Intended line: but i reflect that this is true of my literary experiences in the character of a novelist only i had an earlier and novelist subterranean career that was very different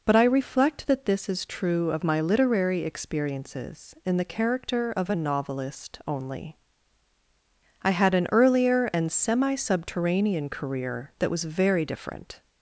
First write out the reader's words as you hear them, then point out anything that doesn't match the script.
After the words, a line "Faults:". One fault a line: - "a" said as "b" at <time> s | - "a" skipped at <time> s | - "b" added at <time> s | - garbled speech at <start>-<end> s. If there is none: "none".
but i reflect that this is true of my literary experiences in the character of a novelist only i had an earlier and semi subterranean career that was very different
Faults:
- "novelist" said as "semi" at 9.1 s